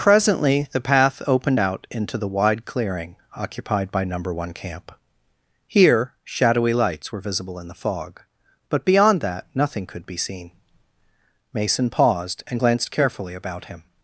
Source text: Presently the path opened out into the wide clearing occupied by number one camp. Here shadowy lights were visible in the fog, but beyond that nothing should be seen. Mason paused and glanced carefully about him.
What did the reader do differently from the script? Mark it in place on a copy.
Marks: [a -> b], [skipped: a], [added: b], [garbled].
Presently the path opened out into the wide clearing occupied by number one camp. Here shadowy lights were visible in the fog, but beyond that nothing [should -> could] be seen. Mason paused and glanced carefully about him.